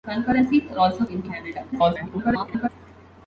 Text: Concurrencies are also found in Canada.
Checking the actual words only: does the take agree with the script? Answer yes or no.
no